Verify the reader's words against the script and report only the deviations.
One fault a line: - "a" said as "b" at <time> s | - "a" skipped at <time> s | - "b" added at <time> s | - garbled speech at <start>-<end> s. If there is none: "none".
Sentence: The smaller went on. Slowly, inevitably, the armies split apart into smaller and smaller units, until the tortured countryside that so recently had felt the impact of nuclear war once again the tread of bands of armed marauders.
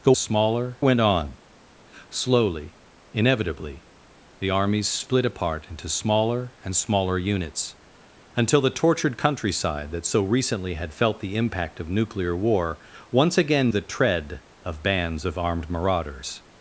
none